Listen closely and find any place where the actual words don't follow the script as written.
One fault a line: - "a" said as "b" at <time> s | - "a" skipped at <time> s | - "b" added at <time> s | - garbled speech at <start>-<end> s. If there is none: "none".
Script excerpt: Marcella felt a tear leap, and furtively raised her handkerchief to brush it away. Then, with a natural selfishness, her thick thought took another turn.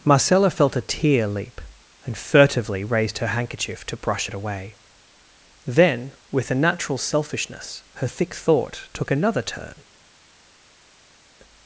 none